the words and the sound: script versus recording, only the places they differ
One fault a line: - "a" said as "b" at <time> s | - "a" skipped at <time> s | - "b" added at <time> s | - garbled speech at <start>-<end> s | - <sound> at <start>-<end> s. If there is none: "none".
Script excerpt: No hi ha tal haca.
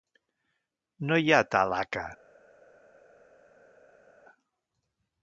none